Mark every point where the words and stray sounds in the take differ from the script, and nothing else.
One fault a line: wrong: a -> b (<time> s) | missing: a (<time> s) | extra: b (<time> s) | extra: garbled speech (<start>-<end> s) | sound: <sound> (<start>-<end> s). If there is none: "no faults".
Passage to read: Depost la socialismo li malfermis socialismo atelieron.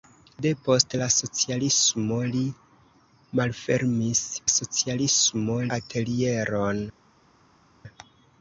no faults